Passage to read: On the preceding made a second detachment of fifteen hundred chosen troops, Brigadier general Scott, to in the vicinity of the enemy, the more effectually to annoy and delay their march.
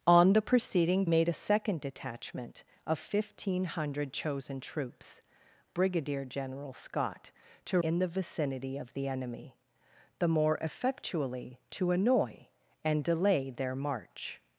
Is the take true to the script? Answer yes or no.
yes